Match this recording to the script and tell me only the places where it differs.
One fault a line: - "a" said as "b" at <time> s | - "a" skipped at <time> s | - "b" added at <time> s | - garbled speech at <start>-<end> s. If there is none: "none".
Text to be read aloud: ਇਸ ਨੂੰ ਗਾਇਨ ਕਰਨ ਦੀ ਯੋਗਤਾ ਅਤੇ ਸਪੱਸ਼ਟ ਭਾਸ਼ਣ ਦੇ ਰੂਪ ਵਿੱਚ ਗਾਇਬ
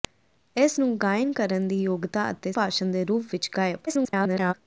- "ਸਪੱਸ਼ਟ" skipped at 2.5 s
- garbled speech at 3.9-4.5 s